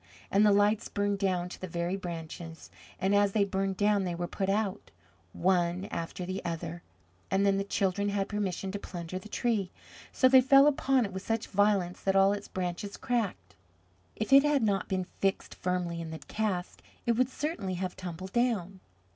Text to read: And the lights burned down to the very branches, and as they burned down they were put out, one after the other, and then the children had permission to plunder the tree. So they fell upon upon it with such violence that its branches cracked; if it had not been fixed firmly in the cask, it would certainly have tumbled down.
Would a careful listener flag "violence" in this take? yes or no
no